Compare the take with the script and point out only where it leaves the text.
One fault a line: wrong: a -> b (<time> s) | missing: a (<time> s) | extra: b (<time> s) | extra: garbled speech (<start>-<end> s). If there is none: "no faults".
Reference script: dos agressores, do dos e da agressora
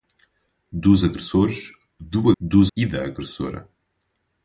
no faults